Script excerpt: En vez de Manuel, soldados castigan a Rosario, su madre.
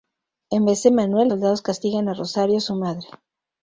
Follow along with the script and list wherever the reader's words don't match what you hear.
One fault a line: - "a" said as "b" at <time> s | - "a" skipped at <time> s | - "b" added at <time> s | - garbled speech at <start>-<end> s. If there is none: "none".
none